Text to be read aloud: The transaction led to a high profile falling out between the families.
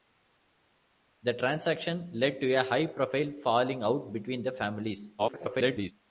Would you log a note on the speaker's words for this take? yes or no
yes